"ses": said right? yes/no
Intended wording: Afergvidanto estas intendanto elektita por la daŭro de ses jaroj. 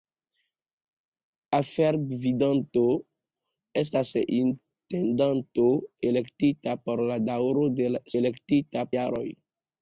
no